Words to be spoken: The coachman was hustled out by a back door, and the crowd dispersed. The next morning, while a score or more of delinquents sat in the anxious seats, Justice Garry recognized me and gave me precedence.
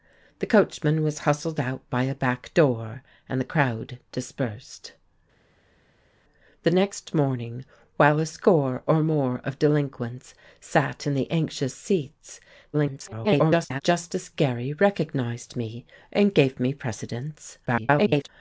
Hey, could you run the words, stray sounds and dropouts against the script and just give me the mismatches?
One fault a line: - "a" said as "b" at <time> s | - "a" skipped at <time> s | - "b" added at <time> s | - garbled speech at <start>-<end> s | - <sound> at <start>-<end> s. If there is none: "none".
- garbled speech at 12.7-13.8 s
- garbled speech at 17.7-18.3 s